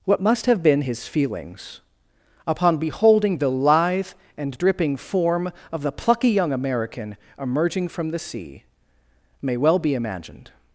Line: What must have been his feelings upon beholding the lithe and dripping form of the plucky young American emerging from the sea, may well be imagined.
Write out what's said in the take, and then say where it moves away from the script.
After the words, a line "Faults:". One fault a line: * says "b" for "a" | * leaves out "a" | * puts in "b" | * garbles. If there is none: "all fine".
What must have been his feelings upon beholding the lithe and dripping form of the plucky young American emerging from the sea, may well be imagined.
Faults:
all fine